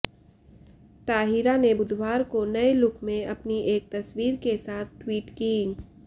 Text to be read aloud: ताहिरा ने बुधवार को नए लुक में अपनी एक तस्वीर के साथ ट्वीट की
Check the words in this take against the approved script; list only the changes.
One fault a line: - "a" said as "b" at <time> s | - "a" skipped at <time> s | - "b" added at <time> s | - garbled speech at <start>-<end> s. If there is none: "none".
none